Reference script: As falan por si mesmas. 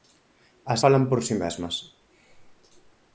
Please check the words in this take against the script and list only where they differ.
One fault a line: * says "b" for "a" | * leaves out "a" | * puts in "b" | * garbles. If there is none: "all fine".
all fine